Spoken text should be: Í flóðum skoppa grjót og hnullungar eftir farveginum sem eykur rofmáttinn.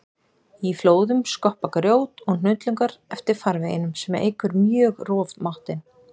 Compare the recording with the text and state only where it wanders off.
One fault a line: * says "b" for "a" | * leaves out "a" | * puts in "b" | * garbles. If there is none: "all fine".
* puts in "mjög"